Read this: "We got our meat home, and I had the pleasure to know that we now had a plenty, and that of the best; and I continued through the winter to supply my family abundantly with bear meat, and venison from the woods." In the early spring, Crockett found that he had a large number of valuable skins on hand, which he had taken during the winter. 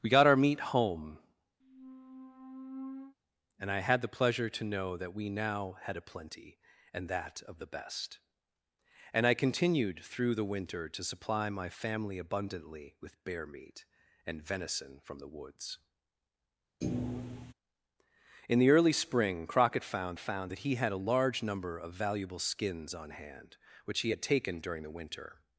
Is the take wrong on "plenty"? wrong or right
right